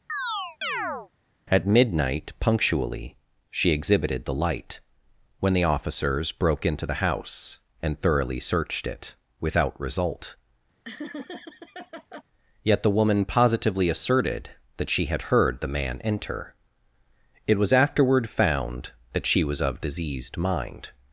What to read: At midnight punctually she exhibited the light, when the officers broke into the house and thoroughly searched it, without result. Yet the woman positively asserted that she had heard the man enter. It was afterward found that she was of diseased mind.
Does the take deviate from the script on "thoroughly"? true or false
false